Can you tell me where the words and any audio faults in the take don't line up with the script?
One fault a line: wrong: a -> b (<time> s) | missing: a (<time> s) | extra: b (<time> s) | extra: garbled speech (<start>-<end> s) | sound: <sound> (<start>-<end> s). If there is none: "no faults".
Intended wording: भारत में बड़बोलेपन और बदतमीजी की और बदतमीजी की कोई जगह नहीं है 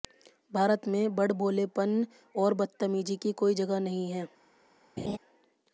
missing: और बदतमीजी की (3.3 s)
sound: laugh (5.0-5.2 s)